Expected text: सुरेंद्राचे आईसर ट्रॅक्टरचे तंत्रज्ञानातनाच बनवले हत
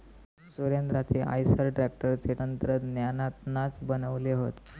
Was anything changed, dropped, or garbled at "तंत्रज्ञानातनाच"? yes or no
no